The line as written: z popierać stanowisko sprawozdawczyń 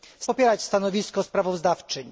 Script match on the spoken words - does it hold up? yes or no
yes